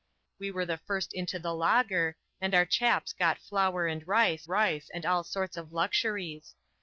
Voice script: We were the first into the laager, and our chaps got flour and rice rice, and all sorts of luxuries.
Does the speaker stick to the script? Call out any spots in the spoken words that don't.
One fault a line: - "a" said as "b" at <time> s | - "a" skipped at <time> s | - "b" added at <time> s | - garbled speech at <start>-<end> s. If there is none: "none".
none